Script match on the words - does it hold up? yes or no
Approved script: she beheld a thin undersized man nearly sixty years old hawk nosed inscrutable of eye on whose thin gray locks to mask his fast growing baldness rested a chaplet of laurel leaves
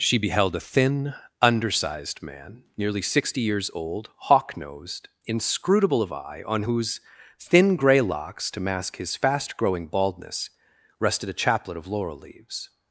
yes